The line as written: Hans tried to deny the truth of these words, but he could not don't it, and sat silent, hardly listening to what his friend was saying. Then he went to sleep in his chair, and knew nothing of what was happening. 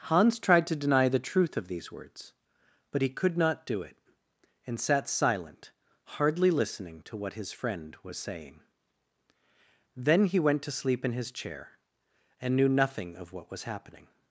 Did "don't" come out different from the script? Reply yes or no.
yes